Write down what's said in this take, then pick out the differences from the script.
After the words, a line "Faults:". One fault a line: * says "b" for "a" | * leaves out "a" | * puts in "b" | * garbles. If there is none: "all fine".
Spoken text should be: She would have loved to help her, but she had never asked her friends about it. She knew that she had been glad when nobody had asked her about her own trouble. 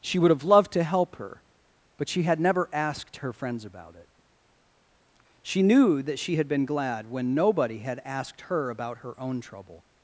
She would have loved to help her, but she had never asked her friends about it. She knew that she had been glad when nobody had asked her about her own trouble.
Faults:
all fine